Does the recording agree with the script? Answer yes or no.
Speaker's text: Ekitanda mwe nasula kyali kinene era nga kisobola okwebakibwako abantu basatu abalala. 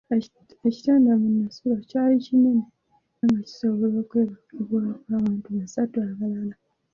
no